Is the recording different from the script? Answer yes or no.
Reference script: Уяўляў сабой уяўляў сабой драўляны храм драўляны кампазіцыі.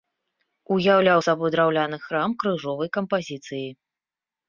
yes